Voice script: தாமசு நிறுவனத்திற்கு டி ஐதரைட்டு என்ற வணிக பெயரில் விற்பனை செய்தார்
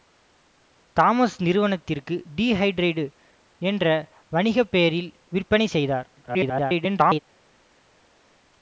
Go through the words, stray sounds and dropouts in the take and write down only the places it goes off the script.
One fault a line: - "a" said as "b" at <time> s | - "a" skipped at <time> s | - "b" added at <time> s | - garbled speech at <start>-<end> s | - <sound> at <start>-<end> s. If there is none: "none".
- garbled speech at 6.2-7.2 s